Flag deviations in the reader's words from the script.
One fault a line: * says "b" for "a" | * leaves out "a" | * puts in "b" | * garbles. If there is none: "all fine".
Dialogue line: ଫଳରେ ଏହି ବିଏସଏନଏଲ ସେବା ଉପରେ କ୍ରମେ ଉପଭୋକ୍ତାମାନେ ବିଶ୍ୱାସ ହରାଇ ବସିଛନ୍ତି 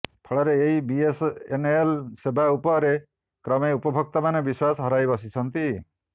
all fine